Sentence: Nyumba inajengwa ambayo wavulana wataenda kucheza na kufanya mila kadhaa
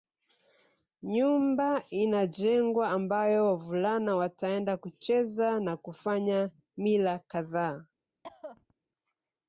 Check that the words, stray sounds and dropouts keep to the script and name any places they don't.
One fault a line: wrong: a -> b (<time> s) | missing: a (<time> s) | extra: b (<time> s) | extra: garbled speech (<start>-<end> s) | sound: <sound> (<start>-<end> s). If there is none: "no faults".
sound: cough (8.2-8.7 s)